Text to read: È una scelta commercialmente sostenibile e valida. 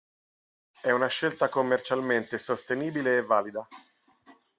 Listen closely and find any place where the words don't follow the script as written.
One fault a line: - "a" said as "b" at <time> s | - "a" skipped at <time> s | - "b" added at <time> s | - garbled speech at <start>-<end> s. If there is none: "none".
none